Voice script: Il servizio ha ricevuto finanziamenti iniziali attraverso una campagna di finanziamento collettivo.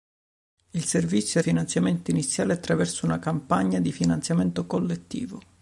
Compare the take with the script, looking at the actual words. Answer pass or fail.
fail